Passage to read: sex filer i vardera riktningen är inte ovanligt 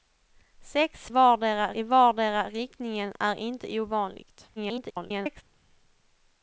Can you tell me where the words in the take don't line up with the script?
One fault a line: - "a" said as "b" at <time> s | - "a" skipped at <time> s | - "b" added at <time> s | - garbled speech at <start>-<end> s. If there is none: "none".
- "filer" said as "vardera" at 1.1 s
- garbled speech at 4.6-5.4 s